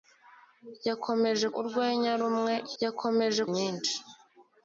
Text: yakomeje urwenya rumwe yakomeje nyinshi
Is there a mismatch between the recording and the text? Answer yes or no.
no